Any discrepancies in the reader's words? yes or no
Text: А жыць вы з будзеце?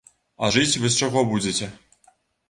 yes